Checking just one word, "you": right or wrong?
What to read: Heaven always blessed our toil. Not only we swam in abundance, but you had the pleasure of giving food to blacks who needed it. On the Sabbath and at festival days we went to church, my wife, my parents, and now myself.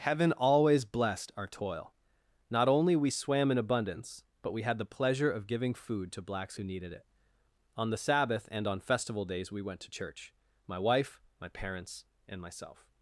wrong